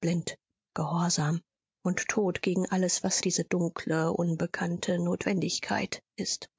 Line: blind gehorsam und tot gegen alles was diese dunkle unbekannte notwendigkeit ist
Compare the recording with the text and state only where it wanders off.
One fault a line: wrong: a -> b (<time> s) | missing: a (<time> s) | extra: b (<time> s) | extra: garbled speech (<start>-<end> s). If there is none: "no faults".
no faults